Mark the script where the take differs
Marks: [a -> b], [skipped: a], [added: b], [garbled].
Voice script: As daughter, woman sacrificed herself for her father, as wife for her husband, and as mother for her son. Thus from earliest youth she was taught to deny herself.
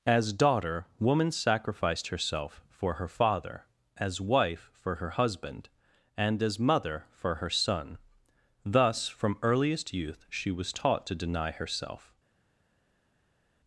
As daughter, woman sacrificed herself for her father, as wife for her husband, and as mother for her son. Thus from earliest youth she was taught to deny herself.